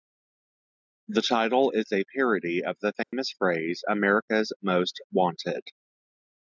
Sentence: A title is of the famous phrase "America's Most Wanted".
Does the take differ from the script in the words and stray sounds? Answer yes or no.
yes